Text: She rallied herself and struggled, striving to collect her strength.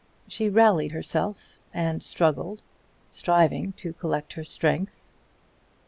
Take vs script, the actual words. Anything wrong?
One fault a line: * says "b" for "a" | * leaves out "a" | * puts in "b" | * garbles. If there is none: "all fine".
all fine